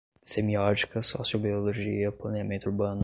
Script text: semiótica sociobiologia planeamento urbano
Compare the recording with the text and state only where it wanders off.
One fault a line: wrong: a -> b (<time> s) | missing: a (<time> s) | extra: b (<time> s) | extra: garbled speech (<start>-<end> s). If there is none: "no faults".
no faults